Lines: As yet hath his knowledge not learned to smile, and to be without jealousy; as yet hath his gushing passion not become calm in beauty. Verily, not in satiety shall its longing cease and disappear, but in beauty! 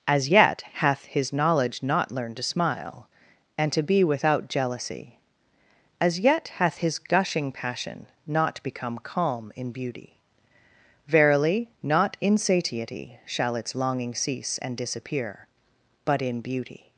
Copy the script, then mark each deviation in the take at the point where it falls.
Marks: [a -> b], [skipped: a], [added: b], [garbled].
As yet hath his knowledge not learned to smile, and to be without jealousy; as yet hath his gushing passion not become calm in beauty. Verily, not in satiety shall its longing cease and disappear, but in beauty!